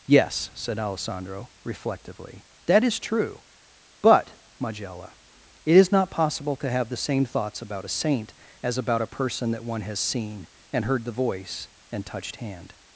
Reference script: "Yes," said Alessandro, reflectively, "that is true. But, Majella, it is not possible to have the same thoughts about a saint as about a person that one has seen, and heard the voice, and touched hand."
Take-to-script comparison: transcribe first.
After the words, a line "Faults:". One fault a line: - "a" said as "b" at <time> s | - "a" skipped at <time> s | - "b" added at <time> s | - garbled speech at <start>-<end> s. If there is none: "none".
"Yes," said Alessandro, reflectively, "that is true. But, Majella, it is not possible to have the same thoughts about a saint as about a person that one has seen, and heard the voice, and touched hand."
Faults:
none